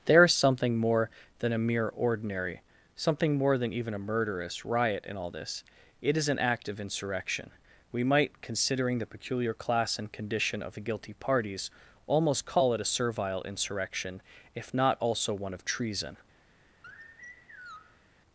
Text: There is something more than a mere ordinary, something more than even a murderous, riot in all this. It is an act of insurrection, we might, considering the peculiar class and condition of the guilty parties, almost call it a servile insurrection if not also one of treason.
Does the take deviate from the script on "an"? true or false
false